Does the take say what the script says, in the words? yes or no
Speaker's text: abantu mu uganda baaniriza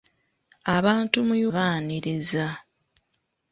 no